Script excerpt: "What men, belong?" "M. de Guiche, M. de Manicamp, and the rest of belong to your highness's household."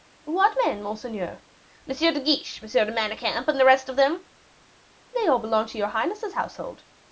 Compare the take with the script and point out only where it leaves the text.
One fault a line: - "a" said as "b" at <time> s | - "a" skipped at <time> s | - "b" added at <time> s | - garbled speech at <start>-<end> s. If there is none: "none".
- "belong" said as "monseigneur" at 0.8 s
- "them They all" added at 4.0 s